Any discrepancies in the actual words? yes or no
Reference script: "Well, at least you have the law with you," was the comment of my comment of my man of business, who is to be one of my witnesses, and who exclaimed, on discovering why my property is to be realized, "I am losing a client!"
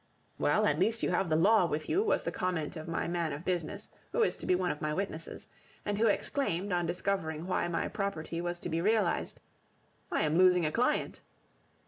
yes